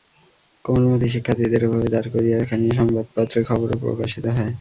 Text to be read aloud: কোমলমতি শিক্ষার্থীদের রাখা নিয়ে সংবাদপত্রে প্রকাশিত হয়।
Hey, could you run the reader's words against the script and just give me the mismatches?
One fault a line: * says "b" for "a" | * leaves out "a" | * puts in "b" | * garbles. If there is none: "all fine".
* puts in "এভাবে দাঁড় করিয়ে"
* puts in "খবরও"